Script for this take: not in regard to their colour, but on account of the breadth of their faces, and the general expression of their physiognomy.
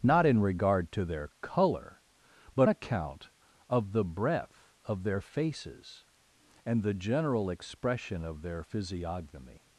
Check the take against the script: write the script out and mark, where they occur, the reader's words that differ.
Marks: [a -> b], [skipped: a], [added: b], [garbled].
not in regard to their colour, but [skipped: on] account of the breadth of their faces, and the general expression of their physiognomy.